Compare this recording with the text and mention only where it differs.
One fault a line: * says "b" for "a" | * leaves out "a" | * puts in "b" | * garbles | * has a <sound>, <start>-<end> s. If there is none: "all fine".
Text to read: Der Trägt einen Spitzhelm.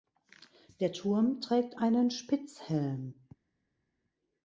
* puts in "Turm"